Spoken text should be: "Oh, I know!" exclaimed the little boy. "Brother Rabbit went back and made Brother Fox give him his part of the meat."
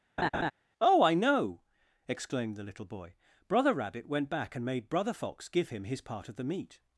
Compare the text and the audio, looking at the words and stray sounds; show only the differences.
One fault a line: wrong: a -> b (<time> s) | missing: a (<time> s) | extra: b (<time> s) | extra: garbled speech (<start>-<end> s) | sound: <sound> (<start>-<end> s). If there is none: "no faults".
sound: laugh (0.2-0.5 s)